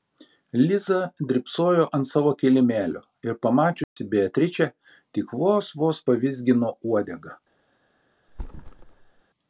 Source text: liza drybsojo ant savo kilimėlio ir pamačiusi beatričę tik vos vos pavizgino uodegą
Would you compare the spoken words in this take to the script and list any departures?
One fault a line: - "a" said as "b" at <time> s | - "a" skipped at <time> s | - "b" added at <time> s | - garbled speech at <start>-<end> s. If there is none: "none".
none